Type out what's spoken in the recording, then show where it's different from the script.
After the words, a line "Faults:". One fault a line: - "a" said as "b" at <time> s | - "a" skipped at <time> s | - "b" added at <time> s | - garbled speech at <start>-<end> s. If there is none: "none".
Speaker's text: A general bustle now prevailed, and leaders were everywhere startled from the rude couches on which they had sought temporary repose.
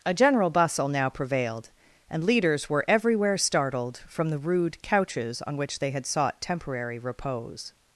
A general bustle now prevailed, and leaders were everywhere startled from the rude couches on which they had sought temporary repose.
Faults:
none